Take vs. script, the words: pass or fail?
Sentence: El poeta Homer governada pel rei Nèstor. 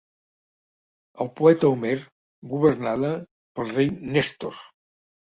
pass